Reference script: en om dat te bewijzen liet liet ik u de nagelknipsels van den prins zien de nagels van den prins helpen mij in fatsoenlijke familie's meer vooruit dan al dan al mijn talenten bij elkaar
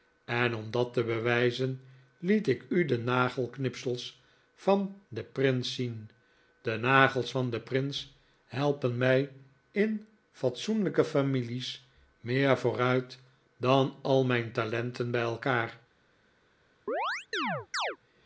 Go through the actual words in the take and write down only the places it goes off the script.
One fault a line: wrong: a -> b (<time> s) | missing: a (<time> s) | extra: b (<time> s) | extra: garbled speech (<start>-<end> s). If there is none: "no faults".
missing: liet (2.5 s)
missing: dan al (14.2 s)